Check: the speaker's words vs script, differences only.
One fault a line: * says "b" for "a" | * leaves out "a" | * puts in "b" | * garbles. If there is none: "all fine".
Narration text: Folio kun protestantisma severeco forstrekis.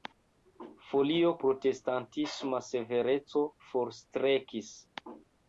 * leaves out "kun"